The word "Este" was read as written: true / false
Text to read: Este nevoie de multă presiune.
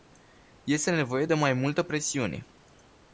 true